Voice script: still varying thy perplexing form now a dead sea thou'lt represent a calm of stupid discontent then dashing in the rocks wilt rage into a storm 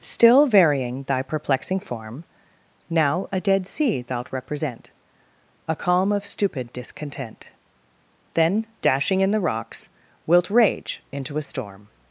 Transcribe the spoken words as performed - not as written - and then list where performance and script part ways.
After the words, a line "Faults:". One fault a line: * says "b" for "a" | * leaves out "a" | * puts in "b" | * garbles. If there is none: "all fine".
still varying thy perplexing form now a dead sea thou'lt represent a calm of stupid discontent then dashing in the rocks wilt rage into a storm
Faults:
all fine